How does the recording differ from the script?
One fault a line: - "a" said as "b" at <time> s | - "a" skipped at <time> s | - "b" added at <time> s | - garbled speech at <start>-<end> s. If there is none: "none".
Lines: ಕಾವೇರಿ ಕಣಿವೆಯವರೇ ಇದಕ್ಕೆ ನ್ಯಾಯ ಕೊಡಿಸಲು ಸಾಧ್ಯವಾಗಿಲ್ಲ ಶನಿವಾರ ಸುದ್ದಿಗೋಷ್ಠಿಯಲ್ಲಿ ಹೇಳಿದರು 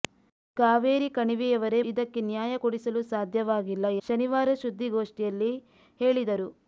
none